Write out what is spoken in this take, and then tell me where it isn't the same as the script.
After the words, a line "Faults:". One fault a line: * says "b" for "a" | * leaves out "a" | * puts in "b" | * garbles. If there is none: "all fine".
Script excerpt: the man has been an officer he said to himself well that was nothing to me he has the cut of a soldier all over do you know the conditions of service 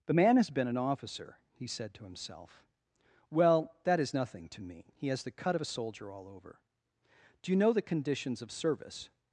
the man has been an officer he said to himself well that is nothing to me he has the cut of a soldier all over do you know the conditions of service
Faults:
* says "is" for "was"